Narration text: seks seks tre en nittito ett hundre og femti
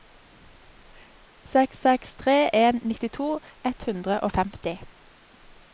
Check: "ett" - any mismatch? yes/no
no